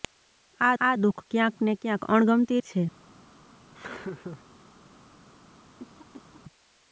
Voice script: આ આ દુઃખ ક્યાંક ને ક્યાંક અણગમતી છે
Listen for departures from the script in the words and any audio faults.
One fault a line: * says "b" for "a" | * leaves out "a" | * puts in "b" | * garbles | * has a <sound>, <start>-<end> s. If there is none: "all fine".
* has a laugh, 3.7-4.4 s
* has a cough, 5.8-6.4 s